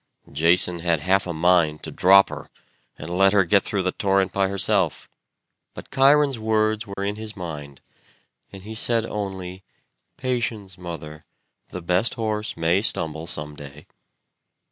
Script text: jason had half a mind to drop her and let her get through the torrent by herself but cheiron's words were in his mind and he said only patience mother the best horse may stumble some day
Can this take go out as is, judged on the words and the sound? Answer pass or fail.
fail